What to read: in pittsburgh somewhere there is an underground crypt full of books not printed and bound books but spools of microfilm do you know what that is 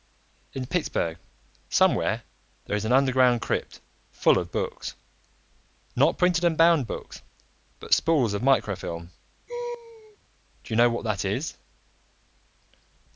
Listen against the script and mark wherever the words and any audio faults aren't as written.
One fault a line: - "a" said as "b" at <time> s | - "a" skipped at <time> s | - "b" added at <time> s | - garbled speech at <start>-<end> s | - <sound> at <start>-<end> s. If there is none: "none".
- laugh at 9.5-10.2 s